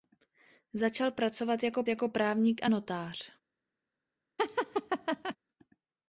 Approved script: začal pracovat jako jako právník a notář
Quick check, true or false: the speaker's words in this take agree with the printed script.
true